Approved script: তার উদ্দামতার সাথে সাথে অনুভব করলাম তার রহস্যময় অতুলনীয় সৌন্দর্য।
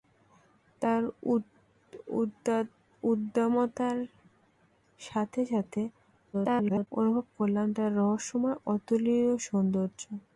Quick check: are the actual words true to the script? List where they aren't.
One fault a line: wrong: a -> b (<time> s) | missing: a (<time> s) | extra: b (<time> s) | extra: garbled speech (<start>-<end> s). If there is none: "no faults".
extra: garbled speech (6.3-6.9 s)